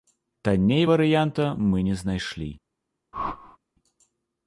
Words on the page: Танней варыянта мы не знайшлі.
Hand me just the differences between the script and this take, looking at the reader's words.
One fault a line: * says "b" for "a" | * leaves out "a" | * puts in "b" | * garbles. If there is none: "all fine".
all fine